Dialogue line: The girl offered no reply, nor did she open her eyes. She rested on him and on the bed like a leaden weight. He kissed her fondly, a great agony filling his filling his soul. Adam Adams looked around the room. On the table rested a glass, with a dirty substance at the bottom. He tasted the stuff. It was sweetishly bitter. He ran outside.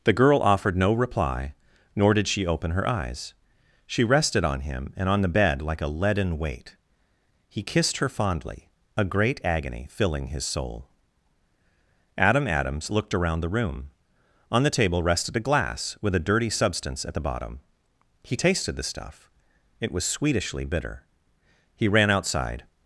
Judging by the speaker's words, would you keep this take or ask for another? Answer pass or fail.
fail